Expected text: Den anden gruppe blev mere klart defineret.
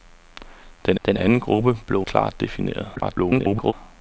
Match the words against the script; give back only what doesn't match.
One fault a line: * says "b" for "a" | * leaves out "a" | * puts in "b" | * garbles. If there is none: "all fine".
* puts in "den"
* leaves out "mere"
* garbles